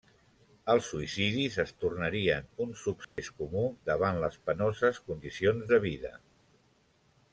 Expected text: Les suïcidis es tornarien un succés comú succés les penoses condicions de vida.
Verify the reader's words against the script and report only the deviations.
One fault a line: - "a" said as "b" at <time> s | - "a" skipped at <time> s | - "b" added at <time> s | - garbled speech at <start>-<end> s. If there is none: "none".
- "Les" said as "Els" at 0.7 s
- "succés" said as "davant" at 3.9 s